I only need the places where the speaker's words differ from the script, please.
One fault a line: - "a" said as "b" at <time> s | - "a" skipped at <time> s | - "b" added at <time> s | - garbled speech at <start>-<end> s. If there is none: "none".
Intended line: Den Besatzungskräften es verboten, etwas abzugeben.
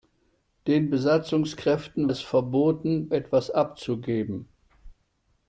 none